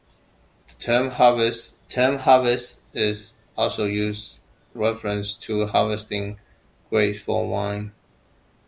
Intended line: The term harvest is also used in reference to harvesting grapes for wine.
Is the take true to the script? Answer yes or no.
no